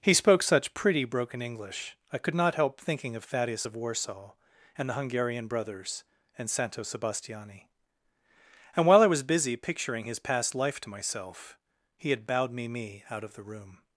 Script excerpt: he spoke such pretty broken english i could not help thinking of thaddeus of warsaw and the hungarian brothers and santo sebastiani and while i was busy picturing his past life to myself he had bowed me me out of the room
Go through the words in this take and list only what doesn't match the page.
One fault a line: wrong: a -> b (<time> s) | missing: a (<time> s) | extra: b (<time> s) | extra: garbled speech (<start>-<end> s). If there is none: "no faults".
no faults